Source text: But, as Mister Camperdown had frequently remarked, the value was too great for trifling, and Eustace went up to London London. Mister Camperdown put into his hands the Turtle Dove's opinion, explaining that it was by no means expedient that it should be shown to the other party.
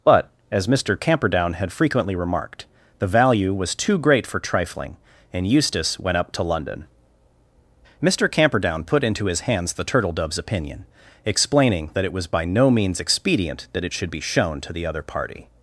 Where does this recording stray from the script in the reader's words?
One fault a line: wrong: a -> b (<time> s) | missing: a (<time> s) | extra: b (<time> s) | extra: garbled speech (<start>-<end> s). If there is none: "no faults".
missing: London (6.8 s)